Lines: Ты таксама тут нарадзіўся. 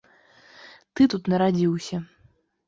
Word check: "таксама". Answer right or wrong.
wrong